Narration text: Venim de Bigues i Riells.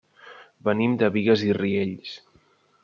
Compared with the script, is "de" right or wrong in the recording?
right